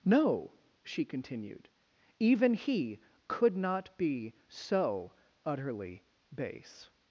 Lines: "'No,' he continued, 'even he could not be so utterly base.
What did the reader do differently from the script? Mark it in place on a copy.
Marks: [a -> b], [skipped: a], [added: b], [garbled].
"'No,' [he -> she] continued, 'even he could not be so utterly base.